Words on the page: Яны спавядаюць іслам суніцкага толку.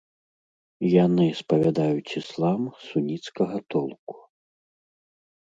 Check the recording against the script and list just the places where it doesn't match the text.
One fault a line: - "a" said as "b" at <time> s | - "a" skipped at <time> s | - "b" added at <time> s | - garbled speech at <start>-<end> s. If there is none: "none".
none